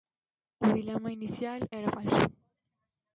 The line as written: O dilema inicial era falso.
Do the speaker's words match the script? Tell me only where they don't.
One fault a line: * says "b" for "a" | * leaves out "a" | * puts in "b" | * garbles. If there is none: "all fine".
all fine